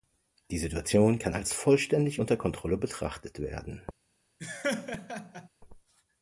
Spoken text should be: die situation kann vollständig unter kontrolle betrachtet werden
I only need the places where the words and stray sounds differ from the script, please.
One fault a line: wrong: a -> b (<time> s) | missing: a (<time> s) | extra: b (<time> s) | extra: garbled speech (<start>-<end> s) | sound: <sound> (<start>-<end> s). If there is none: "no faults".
extra: als (1.3 s)
sound: laugh (4.4-5.5 s)